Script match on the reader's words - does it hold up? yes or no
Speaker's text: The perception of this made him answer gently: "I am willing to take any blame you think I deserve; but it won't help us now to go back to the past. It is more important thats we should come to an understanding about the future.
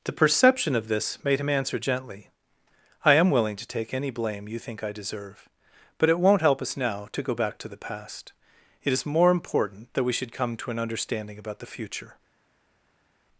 no